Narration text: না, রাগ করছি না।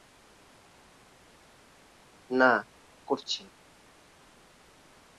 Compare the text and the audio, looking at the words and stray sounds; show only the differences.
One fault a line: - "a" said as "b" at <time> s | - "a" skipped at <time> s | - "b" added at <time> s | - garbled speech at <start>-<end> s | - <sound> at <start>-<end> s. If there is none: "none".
- "রাগ" skipped at 2.5 s